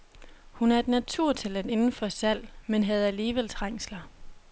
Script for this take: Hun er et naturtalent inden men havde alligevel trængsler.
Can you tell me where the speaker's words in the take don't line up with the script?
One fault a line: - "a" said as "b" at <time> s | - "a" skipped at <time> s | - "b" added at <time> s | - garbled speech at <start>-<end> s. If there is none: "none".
- "for salg" added at 1.9 s